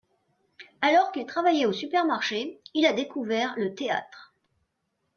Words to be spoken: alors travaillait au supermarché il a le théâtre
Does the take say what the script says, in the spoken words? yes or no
no